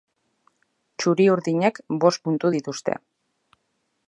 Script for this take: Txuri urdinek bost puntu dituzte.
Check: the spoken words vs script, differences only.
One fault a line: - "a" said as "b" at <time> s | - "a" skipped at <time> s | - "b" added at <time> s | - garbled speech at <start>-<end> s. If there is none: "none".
none